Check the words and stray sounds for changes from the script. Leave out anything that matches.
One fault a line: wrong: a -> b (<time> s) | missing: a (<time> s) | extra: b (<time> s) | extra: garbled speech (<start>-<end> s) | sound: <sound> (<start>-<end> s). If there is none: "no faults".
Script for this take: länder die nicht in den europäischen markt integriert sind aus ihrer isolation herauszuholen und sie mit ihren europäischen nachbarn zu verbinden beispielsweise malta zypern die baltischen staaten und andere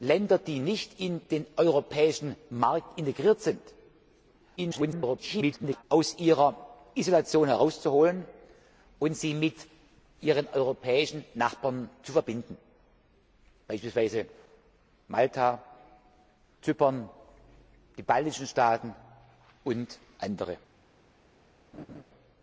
extra: garbled speech (4.6-5.8 s)
sound: laugh (21.7-22.0 s)